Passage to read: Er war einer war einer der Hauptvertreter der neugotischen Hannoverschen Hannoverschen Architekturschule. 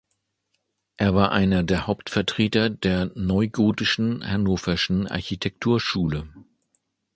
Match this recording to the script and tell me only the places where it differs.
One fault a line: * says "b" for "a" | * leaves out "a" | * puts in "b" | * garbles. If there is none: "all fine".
* leaves out "war einer"
* leaves out "Hannoverschen"